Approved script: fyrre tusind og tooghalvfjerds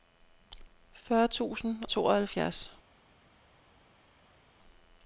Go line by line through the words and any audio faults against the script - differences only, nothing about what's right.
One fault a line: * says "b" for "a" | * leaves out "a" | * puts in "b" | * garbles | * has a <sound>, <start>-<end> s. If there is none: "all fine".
* leaves out "og"